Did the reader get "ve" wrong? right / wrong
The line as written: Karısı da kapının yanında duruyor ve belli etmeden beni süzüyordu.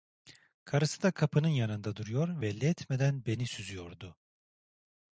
wrong